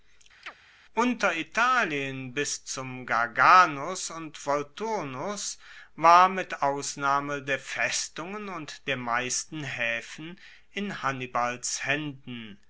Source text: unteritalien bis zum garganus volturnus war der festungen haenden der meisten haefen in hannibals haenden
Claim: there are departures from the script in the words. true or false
true